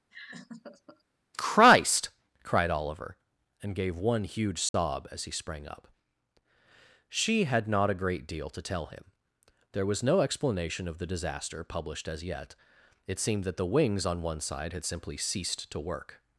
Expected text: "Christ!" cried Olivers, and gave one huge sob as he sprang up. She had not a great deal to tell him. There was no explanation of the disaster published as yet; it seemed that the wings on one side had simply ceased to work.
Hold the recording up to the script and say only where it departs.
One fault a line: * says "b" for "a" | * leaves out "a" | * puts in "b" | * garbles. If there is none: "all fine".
* says "Oliver" for "Olivers"